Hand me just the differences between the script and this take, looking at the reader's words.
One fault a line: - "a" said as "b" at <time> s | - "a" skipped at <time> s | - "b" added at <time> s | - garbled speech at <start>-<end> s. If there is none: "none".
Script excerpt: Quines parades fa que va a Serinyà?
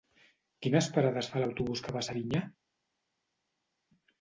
- "l'autobús" added at 1.4 s